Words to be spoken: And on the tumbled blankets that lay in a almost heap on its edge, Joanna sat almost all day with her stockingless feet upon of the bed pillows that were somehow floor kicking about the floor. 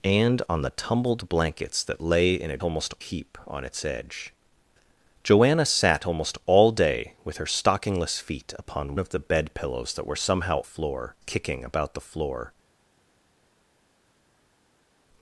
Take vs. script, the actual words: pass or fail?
pass